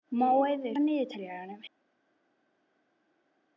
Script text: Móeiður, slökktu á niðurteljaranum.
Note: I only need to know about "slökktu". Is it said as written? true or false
false